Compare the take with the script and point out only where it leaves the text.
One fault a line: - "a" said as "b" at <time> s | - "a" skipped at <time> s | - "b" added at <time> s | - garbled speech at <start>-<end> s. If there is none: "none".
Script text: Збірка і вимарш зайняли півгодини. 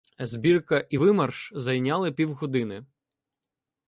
none